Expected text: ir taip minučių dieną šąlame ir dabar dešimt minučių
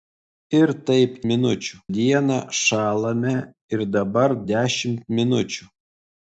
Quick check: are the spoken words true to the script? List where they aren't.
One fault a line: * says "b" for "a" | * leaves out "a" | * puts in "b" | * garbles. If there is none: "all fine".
all fine